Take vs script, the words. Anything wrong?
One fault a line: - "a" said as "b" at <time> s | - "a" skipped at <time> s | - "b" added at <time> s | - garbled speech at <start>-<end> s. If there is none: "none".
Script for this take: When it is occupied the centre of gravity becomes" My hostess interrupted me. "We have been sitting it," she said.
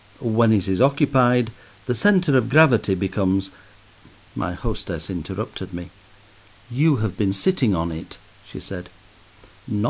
- "We" said as "You" at 6.7 s
- "on" added at 7.7 s